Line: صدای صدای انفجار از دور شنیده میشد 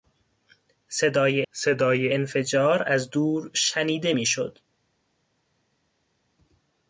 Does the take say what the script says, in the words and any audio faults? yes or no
yes